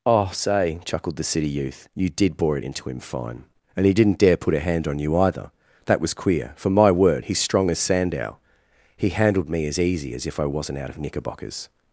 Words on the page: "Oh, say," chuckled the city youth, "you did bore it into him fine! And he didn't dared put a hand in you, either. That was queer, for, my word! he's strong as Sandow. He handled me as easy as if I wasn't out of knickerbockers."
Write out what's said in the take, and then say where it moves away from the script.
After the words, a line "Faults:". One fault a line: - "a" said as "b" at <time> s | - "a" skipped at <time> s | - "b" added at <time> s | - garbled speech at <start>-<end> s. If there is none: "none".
"Oh, say," chuckled the city youth, "you did bore it into him fine! And he didn't dare put a hand on you, either. That was queer, for, my word! he's strong as Sandow. He handled me as easy as if I wasn't out of knickerbockers."
Faults:
- "dared" said as "dare" at 4.2 s
- "in" said as "on" at 4.9 s